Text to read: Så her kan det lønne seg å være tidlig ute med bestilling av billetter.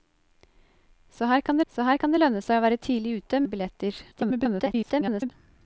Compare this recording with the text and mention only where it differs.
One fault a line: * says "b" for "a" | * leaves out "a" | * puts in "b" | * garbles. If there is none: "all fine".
* puts in "så her kan"
* leaves out "med bestilling"
* garbles